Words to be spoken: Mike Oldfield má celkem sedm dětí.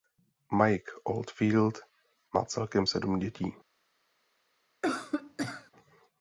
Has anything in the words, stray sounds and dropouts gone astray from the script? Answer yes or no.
yes